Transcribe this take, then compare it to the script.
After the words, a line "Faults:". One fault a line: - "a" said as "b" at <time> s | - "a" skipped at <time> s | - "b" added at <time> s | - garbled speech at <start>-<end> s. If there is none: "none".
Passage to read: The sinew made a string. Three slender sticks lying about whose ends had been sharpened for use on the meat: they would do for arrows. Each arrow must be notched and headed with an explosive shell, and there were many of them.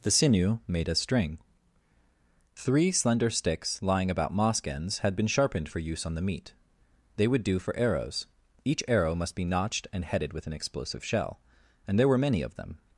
The sinew made a string. Three slender sticks lying about mosque ends had been sharpened for use on the meat: they would do for arrows. Each arrow must be notched and headed with an explosive shell, and there were many of them.
Faults:
- "whose" said as "mosque" at 4.3 s